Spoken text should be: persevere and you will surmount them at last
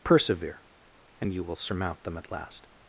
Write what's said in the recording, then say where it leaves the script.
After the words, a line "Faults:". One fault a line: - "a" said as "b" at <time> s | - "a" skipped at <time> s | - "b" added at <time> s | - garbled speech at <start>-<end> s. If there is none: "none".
persevere and you will surmount them at last
Faults:
none